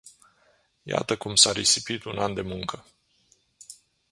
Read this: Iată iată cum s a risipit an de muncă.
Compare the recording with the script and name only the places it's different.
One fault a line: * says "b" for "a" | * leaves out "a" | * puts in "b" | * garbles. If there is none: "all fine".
* leaves out "iată"
* puts in "un"